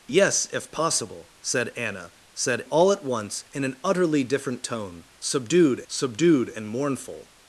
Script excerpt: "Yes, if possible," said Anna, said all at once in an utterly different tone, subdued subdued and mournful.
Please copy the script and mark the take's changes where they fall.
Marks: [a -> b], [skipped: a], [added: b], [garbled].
"Yes, if possible," said Anna, said all at once in an utterly different tone, subdued subdued and mournful.